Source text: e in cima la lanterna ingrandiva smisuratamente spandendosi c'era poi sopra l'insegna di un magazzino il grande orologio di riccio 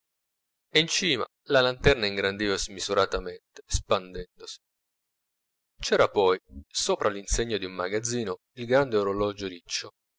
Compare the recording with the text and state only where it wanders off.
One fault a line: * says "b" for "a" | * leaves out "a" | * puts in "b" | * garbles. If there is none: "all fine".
* leaves out "di"